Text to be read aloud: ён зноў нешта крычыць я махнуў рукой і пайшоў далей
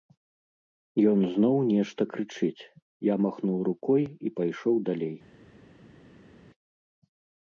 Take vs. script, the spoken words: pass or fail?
pass